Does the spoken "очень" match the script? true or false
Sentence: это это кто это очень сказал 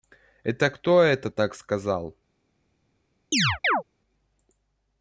false